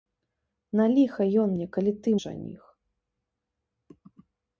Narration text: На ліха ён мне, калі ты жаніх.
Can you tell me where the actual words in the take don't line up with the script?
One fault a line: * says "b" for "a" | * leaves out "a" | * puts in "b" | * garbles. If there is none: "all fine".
all fine